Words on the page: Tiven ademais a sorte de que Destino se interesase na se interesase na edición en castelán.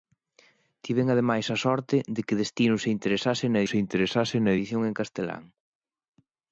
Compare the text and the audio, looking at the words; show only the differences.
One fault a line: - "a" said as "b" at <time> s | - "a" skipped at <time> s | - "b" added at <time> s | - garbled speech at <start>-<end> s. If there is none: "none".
none